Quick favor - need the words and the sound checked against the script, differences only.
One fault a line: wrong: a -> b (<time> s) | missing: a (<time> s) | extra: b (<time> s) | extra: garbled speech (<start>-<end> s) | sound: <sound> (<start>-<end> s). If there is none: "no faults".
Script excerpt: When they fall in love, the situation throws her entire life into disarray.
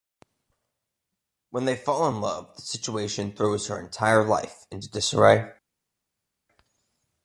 no faults